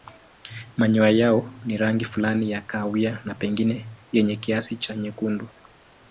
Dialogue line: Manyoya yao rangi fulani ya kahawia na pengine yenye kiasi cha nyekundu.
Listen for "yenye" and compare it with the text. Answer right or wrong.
right